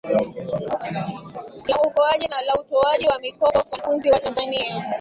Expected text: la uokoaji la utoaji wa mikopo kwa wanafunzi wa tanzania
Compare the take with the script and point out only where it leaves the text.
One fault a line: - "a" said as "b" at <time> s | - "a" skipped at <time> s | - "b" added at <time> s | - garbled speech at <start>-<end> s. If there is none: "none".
none